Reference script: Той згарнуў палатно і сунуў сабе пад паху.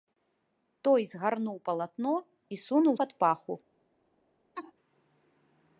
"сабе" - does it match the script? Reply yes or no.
no